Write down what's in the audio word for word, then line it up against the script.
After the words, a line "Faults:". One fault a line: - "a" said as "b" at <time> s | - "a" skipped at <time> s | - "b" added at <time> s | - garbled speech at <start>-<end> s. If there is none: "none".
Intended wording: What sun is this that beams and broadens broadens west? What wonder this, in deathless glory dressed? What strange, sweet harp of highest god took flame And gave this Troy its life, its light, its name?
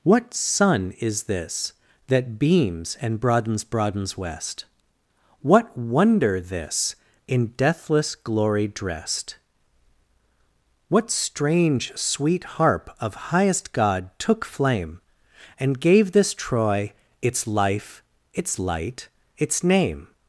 What sun is this that beams and broadens broadens west? What wonder this, in deathless glory dressed? What strange, sweet harp of highest god took flame And gave this Troy its life, its light, its name?
Faults:
none